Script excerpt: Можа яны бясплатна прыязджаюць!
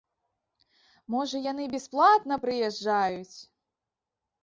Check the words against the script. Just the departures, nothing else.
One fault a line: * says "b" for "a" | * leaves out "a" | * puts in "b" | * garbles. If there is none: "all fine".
all fine